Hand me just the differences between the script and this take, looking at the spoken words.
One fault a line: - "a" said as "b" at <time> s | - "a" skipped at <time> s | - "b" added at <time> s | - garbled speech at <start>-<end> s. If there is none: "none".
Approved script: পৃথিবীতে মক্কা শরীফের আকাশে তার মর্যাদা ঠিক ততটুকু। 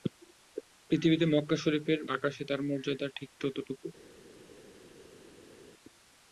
none